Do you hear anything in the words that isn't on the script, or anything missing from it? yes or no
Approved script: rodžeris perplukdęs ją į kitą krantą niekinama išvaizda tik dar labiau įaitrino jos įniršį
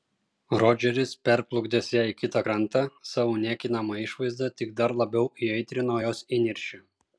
yes